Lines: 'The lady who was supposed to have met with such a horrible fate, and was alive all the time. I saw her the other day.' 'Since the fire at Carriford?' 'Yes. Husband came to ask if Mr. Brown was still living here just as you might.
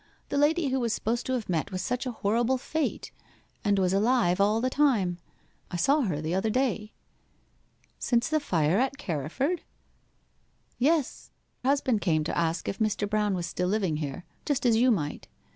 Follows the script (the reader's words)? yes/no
yes